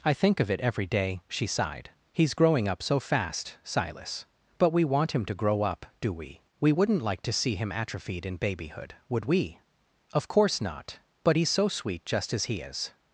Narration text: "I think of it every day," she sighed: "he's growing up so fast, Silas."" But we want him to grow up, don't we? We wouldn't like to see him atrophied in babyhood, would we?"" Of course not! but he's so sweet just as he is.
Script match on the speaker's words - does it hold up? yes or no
no